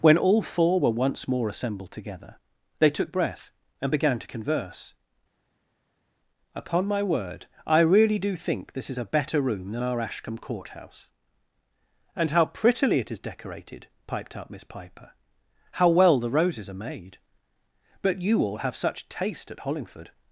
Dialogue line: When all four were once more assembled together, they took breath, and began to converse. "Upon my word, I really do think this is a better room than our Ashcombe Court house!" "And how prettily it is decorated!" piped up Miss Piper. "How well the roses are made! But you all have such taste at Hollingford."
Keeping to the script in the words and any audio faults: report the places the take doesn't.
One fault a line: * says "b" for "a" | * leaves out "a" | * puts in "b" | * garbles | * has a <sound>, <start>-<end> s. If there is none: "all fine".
all fine